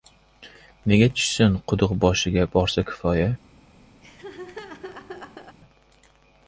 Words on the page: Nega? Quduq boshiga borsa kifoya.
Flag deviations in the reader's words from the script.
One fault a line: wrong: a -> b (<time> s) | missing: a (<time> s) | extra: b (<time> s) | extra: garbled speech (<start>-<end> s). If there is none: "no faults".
extra: tushsin (1.2 s)